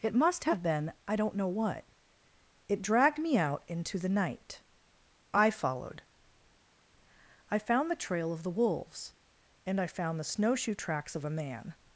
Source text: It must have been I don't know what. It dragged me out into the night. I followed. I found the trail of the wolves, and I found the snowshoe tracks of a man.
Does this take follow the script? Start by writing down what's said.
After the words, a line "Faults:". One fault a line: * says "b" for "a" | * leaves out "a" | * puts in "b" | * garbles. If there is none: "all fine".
It must have been I don't know what. It dragged me out into the night. I followed. I found the trail of the wolves, and I found the snowshoe tracks of a man.
Faults:
all fine